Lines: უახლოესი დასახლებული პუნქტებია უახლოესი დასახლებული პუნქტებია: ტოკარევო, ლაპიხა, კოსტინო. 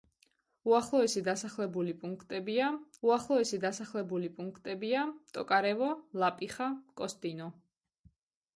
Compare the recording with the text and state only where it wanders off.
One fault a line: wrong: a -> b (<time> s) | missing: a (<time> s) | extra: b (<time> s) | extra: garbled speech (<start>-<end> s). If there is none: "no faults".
no faults